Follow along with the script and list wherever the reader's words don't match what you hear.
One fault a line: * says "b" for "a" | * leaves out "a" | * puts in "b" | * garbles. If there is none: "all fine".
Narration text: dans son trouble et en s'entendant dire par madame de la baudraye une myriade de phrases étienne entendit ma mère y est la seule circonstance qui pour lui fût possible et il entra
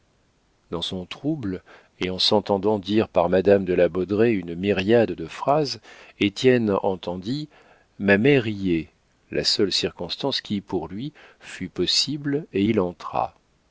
all fine